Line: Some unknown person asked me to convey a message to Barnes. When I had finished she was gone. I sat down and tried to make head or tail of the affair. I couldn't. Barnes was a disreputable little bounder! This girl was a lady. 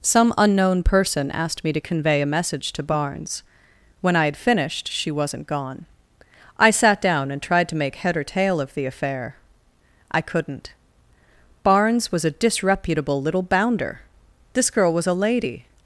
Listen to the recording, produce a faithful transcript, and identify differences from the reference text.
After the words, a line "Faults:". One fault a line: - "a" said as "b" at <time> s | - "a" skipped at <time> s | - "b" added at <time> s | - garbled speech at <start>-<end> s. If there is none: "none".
Some unknown person asked me to convey a message to Barnes. When I had finished she wasn't gone. I sat down and tried to make head or tail of the affair. I couldn't. Barnes was a disreputable little bounder! This girl was a lady.
Faults:
- "was" said as "wasn't" at 5.1 s